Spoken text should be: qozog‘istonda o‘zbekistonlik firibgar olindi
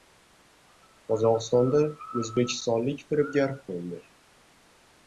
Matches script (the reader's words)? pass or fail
pass